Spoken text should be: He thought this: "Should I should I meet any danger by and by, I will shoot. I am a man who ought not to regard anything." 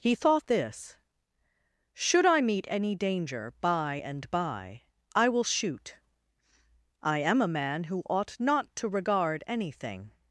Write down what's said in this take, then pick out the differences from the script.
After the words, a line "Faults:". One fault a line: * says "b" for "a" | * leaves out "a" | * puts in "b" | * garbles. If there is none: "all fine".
He thought this: "Should I meet any danger by and by, I will shoot. I am a man who ought not to regard anything."
Faults:
* leaves out "should I"